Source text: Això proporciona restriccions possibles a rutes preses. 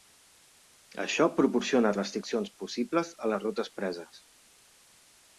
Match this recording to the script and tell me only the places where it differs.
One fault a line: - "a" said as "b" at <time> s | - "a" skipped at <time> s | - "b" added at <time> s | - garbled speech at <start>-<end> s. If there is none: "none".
- "les" added at 3.3 s